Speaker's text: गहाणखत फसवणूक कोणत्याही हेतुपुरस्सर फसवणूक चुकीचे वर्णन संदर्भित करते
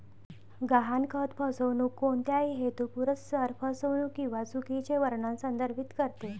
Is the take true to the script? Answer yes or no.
no